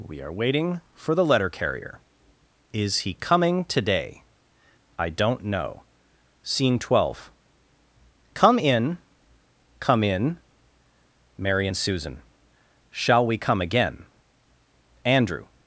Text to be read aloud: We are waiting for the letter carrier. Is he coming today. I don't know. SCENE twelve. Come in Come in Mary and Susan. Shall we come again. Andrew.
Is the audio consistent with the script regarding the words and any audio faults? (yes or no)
yes